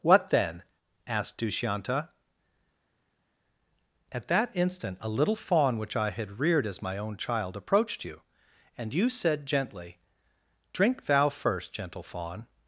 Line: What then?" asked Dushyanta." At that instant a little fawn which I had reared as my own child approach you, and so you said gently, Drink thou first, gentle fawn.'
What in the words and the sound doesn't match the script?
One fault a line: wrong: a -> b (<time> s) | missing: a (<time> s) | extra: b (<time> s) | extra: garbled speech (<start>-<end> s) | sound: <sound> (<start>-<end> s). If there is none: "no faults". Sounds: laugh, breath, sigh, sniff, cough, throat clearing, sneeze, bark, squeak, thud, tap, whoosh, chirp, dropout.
wrong: approach -> approached (7.6 s)
missing: so (8.9 s)